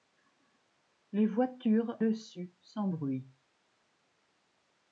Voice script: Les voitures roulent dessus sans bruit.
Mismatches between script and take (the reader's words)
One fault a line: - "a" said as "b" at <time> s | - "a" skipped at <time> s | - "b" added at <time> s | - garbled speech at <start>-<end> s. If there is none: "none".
- "roulent" skipped at 2.0 s